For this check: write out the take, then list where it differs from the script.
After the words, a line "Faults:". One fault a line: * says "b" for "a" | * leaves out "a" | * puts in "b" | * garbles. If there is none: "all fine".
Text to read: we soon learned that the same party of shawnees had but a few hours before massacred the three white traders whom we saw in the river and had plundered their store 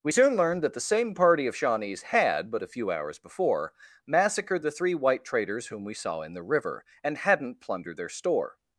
we soon learned that the same party of shawnees had but a few hours before massacred the three white traders whom we saw in the river and hadn't plundered their store
Faults:
* says "hadn't" for "had"